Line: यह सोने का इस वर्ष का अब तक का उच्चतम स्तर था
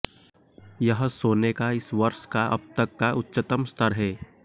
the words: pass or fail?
fail